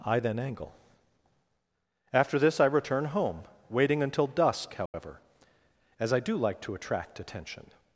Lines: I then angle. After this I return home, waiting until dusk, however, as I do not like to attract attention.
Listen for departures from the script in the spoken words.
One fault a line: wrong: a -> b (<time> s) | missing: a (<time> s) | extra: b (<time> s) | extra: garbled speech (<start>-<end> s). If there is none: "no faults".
missing: not (6.3 s)